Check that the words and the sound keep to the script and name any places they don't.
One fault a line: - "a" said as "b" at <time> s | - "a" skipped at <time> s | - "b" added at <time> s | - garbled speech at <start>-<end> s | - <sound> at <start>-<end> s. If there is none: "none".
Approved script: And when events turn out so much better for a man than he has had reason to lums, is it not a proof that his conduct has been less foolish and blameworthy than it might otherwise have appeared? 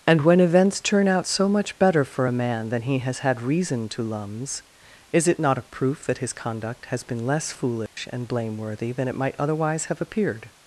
- dropout at 7.9-8.0 s